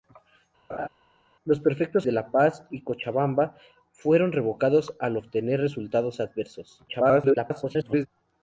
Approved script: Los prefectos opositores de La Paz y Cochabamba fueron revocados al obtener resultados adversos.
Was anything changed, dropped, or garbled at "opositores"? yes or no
yes